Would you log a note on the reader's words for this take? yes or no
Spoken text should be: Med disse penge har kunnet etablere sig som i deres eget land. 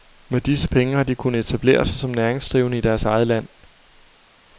yes